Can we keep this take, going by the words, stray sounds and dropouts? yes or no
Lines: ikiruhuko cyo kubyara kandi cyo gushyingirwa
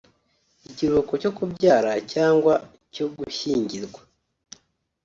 no